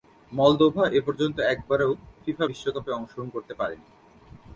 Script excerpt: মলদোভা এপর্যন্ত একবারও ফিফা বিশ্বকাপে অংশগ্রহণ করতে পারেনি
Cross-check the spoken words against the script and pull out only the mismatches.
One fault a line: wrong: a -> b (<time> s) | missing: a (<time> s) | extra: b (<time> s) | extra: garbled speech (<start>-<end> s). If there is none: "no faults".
no faults